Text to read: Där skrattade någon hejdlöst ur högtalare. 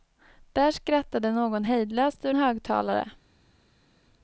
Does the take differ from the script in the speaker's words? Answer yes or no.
no